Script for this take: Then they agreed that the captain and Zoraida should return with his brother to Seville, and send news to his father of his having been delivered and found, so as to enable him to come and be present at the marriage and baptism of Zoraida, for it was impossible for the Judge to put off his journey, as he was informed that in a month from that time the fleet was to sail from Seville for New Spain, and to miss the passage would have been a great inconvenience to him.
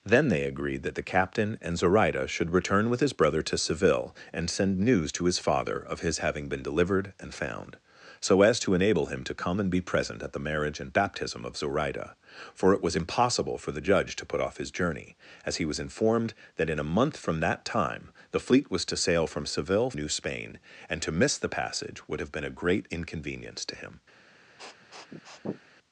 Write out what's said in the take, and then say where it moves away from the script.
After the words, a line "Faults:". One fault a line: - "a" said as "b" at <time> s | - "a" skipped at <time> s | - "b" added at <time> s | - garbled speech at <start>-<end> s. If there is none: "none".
Then they agreed that the captain and Zoraida should return with his brother to Seville, and send news to his father of his having been delivered and found, so as to enable him to come and be present at the marriage and baptism of Zoraida, for it was impossible for the Judge to put off his journey, as he was informed that in a month from that time the fleet was to sail from Seville New Spain, and to miss the passage would have been a great inconvenience to him.
Faults:
- "for" skipped at 19.9 s